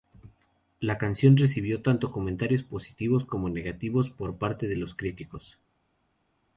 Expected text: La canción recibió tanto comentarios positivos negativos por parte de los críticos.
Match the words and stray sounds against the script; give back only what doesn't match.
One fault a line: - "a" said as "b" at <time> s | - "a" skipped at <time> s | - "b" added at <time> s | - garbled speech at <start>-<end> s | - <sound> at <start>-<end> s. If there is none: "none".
- "como" added at 3.3 s